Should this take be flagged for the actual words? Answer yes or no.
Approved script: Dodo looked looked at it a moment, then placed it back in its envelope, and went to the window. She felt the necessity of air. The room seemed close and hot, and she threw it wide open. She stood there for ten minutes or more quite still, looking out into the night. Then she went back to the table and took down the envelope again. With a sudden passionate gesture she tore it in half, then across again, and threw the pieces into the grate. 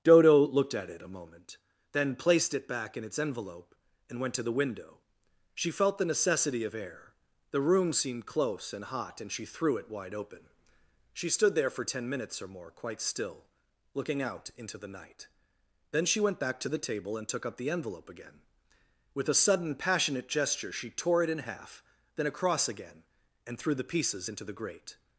yes